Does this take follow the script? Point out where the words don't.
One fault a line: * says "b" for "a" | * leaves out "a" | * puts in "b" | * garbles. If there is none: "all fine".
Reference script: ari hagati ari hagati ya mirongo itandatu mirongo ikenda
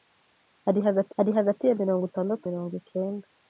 all fine